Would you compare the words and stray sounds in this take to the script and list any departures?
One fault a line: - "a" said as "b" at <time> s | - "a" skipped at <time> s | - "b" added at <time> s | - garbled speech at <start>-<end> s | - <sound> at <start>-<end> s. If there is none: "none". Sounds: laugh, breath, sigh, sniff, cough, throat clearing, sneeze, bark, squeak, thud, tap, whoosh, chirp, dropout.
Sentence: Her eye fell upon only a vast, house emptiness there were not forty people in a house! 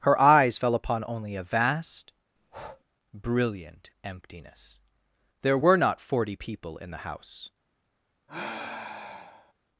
- "eye" said as "eyes" at 0.2 s
- breath at 2.4-2.8 s
- "house" said as "brilliant" at 3.1 s
- "a" said as "the" at 6.9 s
- sigh at 8.3-9.5 s